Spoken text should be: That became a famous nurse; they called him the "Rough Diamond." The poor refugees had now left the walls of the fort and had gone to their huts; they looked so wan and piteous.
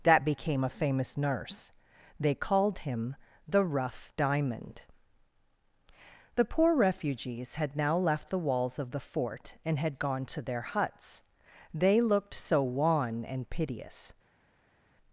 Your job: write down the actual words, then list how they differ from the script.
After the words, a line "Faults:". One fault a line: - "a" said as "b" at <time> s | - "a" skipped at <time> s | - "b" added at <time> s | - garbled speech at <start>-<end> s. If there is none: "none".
That became a famous nurse; they called him the "Rough Diamond." The poor refugees had now left the walls of the fort and had gone to their huts; they looked so wan and piteous.
Faults:
none